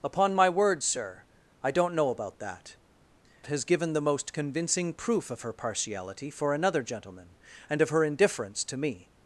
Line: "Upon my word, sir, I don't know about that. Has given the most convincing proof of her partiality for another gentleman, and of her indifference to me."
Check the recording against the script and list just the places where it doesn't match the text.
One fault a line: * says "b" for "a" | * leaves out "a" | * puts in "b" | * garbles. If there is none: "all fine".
all fine